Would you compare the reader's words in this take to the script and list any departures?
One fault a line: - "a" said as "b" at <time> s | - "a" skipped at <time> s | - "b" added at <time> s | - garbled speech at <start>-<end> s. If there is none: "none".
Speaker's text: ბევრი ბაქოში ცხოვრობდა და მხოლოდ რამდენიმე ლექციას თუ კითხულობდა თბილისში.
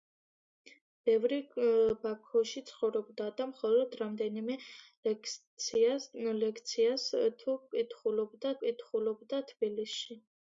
- "კითხულობდა" added at 8.7 s